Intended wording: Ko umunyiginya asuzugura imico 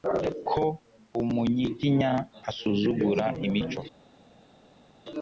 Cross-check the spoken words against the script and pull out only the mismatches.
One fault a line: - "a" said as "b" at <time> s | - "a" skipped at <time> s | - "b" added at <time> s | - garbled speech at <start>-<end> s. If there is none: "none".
none